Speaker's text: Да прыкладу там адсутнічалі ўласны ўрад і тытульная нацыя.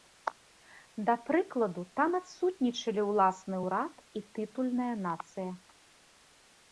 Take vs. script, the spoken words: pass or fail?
pass